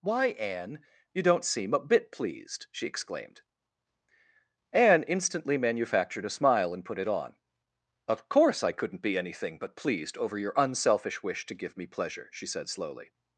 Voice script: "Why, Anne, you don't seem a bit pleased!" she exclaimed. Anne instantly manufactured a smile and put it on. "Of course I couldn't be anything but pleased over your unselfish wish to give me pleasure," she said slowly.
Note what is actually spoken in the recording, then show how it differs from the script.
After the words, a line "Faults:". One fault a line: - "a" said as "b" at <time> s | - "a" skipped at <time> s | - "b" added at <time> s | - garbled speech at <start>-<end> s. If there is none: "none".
"Why, Anne, you don't seem a bit pleased!" she exclaimed. Anne instantly manufactured a smile and put it on. "Of course I couldn't be anything but pleased over your unselfish wish to give me pleasure," she said slowly.
Faults:
none